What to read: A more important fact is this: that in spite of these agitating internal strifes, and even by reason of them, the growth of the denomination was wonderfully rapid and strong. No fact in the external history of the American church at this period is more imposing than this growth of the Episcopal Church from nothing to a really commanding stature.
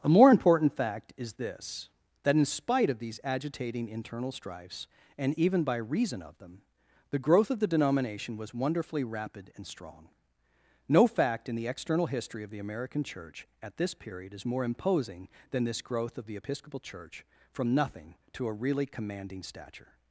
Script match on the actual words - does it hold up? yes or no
yes